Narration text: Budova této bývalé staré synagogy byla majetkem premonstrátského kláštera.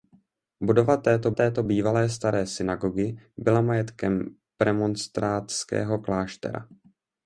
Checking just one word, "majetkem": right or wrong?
right